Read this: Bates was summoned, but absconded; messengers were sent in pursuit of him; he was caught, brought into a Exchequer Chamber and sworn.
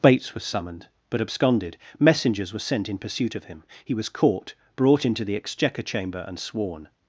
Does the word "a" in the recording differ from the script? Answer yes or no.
yes